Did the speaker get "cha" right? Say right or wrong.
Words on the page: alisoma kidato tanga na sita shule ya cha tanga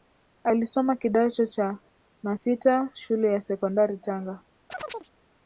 wrong